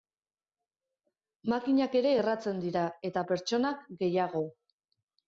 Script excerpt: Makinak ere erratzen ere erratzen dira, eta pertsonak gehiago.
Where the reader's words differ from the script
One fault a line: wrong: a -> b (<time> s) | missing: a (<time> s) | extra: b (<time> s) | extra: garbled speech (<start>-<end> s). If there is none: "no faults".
missing: ere erratzen (2.6 s)